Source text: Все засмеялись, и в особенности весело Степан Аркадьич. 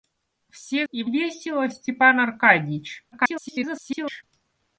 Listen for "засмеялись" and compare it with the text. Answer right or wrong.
wrong